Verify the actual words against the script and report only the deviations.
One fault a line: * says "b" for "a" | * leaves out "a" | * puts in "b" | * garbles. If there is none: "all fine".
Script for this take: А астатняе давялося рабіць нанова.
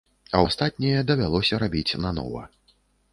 all fine